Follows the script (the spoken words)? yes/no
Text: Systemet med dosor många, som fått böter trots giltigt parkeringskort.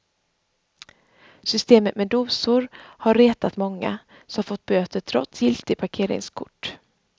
no